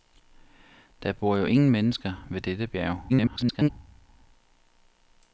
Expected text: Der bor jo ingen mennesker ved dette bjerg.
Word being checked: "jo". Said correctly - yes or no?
yes